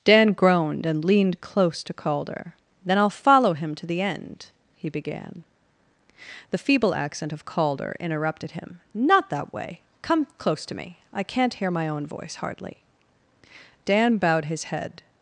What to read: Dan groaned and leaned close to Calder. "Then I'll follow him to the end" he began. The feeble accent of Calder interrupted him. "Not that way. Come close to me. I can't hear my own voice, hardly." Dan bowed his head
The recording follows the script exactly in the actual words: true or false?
true